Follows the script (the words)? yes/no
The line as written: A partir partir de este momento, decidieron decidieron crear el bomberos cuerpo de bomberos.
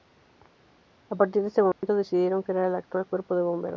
no